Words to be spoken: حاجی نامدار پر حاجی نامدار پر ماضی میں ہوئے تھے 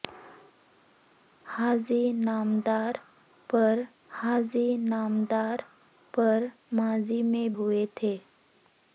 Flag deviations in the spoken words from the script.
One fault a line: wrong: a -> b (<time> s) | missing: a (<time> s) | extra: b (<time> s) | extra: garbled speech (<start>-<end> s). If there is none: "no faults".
no faults